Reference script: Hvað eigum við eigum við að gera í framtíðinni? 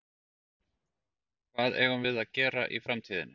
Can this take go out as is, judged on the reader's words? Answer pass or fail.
fail